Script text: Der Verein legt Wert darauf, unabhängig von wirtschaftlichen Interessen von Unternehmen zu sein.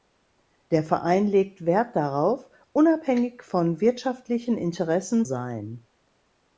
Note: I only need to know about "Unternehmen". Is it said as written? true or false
false